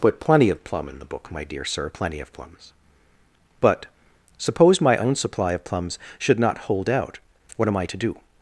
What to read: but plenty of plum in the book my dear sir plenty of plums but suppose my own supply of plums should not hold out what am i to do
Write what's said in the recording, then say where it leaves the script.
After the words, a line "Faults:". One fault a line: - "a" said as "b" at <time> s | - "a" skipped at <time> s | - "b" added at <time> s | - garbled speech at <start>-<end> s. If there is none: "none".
but plenty of plum in the book my dear sir plenty of plums but suppose my own supply of plums should not hold out what am i to do
Faults:
none